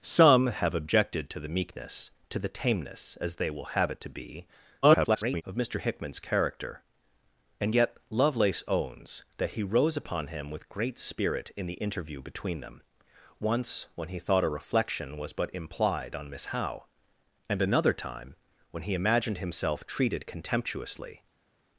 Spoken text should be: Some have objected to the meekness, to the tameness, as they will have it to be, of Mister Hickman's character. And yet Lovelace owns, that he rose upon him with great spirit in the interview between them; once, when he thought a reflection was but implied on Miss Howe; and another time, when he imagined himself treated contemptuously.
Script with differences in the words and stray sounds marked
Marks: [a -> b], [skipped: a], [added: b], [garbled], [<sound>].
Some have objected to the meekness, to the tameness, as they will have it to be, [garbled] of Mister Hickman's character. And yet Lovelace owns, that he rose upon him with great spirit in the interview between them; once, when he thought a reflection was but implied on Miss Howe; and another time, when he imagined himself treated contemptuously.